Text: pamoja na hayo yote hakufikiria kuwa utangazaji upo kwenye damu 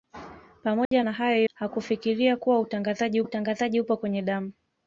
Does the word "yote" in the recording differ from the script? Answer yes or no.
yes